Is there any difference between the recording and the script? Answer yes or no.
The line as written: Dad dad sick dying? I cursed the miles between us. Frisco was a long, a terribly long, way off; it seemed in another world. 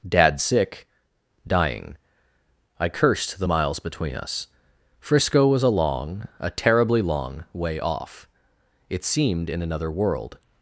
yes